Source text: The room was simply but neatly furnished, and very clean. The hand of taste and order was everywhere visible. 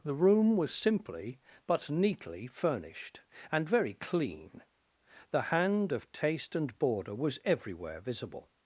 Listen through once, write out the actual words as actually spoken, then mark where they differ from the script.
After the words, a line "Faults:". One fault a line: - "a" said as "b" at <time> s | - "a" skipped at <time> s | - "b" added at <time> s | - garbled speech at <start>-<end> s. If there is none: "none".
The room was simply but neatly furnished, and very clean. The hand of taste and border was everywhere visible.
Faults:
- "order" said as "border" at 6.8 s